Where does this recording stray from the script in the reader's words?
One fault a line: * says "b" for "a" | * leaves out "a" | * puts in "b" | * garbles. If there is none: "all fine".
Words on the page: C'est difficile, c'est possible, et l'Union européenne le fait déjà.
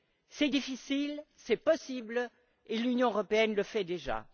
all fine